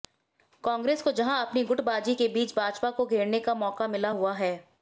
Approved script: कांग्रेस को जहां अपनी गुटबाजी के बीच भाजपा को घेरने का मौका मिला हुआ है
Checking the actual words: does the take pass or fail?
pass